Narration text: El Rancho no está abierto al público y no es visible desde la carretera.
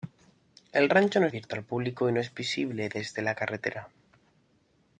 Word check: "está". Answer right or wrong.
wrong